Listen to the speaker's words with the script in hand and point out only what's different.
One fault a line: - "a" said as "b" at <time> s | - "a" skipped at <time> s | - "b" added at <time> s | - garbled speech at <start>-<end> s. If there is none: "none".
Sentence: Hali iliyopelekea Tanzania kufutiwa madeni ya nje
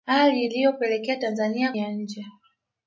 - "kufutiwa madeni" skipped at 1.7 s